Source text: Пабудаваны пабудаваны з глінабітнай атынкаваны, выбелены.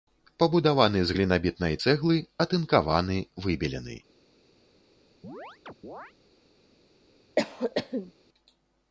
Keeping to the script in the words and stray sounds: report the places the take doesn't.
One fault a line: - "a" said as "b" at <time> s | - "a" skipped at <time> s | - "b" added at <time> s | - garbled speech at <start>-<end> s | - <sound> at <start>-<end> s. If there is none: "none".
- "пабудаваны" skipped at 1.0 s
- "цэглы" added at 1.8 s
- chirp at 5.2-6.1 s
- cough at 7.4-8.1 s